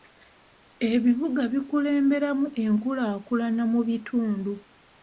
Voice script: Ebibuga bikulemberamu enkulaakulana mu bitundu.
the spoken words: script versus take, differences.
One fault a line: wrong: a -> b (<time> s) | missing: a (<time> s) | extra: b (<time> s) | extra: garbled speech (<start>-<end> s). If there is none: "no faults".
no faults